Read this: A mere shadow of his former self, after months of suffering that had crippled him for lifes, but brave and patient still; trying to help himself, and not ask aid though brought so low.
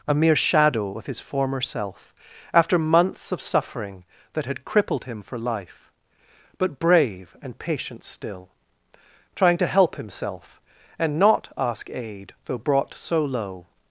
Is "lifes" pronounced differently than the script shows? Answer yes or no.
yes